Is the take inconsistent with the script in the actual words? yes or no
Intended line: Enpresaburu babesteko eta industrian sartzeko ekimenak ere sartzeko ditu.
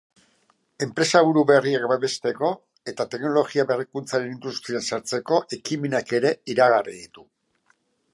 yes